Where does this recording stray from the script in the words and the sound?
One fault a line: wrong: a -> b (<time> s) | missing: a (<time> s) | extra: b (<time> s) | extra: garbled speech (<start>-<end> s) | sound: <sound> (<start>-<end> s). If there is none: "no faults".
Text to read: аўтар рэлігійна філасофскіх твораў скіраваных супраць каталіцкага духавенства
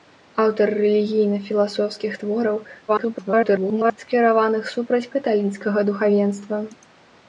extra: garbled speech (2.9-4.0 s)